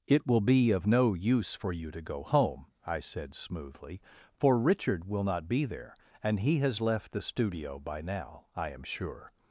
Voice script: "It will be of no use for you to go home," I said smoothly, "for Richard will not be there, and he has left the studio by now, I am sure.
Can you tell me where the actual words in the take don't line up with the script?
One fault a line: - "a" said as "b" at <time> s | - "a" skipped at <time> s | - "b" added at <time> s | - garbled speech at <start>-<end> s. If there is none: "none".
none